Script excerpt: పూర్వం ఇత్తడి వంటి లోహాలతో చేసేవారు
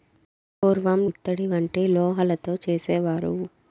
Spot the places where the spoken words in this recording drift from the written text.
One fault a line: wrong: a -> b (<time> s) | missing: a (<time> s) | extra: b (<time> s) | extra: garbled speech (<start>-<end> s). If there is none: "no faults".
no faults